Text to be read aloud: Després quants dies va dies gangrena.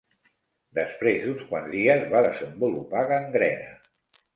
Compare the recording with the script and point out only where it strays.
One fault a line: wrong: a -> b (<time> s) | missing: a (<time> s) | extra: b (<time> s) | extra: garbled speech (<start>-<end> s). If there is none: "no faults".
extra: d'uns (1.3 s)
wrong: dies -> desenvolupar (2.3 s)